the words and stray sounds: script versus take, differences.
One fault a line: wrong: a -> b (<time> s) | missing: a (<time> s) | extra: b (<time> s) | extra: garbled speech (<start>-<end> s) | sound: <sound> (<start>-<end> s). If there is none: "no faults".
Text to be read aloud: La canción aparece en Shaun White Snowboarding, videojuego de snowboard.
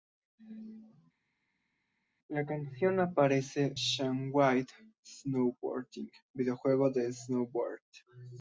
missing: en (3.7 s)